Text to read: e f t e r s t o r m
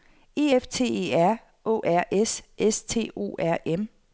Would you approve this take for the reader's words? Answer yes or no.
no